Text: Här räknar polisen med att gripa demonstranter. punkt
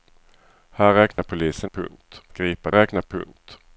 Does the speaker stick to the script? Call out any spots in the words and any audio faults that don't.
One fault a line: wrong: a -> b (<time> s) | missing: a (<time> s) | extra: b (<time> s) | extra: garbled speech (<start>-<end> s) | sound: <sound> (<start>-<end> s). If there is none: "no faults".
sound: dropout (1.1-1.2 s)
wrong: med -> punkt (1.7 s)
wrong: demonstranter -> räknar (2.7 s)